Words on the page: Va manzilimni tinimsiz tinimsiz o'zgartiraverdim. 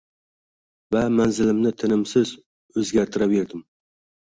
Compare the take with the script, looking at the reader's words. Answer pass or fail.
fail